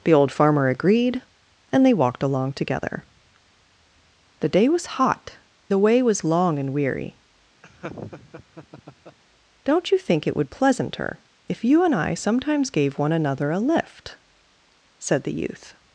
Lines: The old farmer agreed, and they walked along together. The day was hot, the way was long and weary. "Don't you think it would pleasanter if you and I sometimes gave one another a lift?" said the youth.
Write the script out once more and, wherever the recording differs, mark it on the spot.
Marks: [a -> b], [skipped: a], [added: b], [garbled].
The old farmer agreed, and they walked along together. The day was hot, the way was long and weary. "Don't you think it would pleasanter if you and I sometimes gave one another a lift?" said the youth.